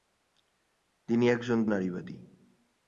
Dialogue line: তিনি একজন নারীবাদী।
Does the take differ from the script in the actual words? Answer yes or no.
no